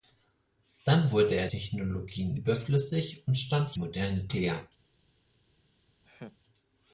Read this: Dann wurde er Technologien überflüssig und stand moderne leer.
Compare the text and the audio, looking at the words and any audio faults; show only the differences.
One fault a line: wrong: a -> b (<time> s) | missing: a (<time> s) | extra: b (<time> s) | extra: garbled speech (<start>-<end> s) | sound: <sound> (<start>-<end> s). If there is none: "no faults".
sound: laugh (6.0-6.4 s)